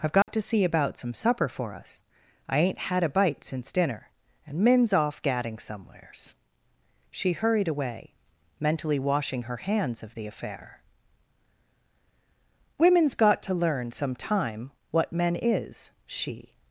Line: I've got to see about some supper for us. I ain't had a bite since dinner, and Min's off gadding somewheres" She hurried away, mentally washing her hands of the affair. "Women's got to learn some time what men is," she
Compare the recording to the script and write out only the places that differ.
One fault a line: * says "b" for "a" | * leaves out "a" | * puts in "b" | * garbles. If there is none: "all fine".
all fine